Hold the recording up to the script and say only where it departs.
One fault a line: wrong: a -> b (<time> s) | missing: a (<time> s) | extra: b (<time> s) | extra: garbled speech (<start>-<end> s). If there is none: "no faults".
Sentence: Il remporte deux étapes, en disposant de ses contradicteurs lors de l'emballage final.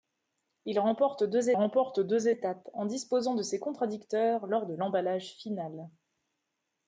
extra: remporte deux (1.5 s)